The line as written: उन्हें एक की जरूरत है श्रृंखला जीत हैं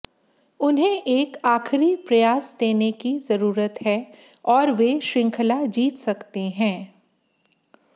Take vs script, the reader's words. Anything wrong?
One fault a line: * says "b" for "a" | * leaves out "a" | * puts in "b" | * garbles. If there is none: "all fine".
* puts in "आखिरी प्रयास देने"
* puts in "और वे"
* puts in "सकते"